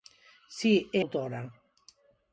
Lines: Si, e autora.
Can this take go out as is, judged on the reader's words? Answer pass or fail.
pass